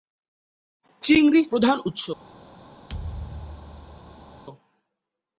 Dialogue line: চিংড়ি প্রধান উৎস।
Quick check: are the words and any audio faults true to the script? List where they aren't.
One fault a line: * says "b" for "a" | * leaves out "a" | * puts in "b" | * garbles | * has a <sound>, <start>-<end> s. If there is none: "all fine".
* has a thud, 2.9-4.4 s